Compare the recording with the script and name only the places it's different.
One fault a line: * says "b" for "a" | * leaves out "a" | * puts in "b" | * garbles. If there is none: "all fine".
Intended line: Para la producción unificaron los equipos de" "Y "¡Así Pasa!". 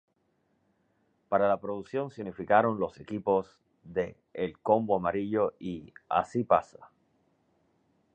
* puts in "se"
* puts in "El Combo Amarillo"